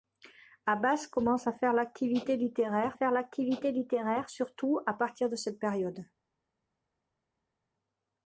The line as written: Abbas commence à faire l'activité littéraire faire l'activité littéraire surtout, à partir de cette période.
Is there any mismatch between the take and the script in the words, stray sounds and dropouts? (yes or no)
no